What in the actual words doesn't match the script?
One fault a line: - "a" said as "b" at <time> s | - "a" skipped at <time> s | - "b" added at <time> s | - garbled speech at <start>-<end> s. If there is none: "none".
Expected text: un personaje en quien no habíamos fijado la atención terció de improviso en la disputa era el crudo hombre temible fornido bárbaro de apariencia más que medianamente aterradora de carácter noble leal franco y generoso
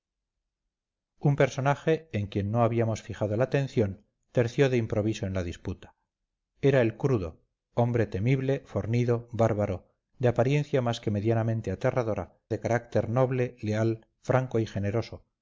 none